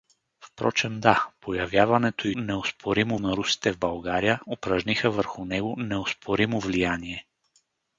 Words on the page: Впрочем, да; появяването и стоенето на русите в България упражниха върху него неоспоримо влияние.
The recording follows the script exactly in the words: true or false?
false